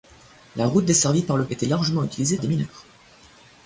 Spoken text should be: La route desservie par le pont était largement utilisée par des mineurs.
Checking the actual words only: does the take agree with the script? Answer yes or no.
no